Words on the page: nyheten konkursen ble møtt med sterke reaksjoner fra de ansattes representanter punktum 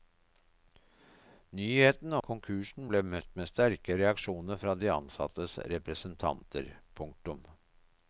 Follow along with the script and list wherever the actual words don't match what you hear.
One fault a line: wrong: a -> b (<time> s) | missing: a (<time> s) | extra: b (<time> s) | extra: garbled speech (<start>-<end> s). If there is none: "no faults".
no faults